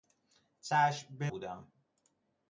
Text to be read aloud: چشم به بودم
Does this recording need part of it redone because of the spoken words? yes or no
no